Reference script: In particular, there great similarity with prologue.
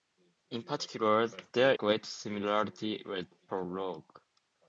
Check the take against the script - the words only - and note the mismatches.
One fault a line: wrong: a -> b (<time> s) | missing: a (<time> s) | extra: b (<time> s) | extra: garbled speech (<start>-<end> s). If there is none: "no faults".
no faults